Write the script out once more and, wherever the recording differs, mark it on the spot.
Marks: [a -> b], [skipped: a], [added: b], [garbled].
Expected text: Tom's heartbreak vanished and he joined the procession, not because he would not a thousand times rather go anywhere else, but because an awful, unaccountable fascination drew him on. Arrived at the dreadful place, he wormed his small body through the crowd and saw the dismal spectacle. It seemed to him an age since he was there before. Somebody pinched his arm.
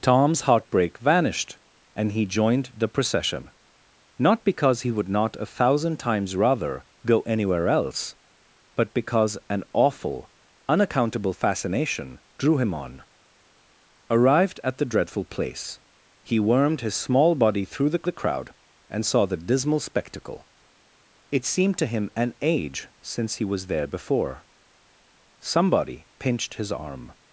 Tom's heartbreak vanished and he joined the procession, not because he would not a thousand times rather go anywhere else, but because an awful, unaccountable fascination drew him on. Arrived at the dreadful place, he wormed his small body through the [added: the] crowd and saw the dismal spectacle. It seemed to him an age since he was there before. Somebody pinched his arm.